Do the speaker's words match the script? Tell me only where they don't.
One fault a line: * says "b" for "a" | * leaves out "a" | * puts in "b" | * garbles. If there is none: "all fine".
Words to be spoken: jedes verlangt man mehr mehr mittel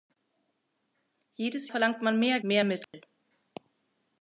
all fine